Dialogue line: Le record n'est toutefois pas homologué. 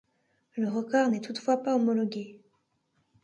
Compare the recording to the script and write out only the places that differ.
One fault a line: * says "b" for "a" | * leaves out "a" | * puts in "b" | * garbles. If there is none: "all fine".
all fine